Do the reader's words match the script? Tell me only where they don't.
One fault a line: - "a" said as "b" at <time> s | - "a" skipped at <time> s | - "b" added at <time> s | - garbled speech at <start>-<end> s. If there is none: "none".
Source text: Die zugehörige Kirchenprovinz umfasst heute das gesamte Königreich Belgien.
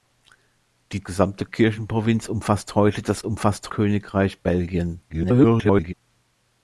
- "zugehörige" said as "gesamte" at 1.0 s
- "gesamte" said as "umfasst" at 3.2 s
- garbled speech at 5.1-5.9 s